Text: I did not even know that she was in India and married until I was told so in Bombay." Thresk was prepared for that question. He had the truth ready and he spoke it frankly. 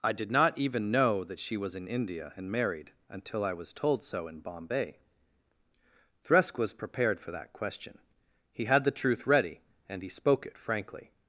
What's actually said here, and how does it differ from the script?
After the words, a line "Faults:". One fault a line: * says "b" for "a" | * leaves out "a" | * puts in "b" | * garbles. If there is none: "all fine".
I did not even know that she was in India and married until I was told so in Bombay." Thresk was prepared for that question. He had the truth ready and he spoke it frankly.
Faults:
all fine